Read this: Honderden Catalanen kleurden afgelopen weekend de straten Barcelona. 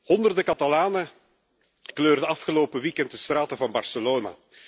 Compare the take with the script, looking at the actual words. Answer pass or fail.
fail